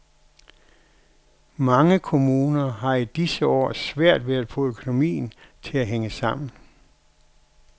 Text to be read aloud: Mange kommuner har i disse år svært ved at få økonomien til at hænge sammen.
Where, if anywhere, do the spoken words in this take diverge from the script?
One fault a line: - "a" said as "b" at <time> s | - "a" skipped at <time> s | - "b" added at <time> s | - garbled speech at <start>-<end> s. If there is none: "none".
none